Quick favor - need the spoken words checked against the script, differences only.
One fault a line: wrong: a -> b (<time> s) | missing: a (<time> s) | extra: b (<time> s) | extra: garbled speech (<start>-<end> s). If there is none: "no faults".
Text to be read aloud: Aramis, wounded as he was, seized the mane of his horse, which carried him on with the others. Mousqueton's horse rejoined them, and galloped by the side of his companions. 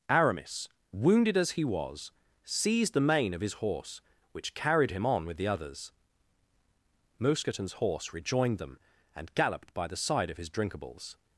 wrong: companions -> drinkables (10.5 s)